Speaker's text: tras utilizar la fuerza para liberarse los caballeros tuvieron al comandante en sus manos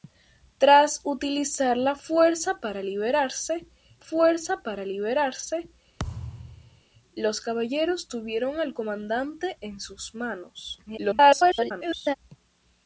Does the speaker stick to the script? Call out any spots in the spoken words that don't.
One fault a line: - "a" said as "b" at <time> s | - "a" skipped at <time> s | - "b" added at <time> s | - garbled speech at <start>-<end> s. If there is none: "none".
- "fuerza para liberarse" added at 4.0 s
- garbled speech at 10.9-12.1 s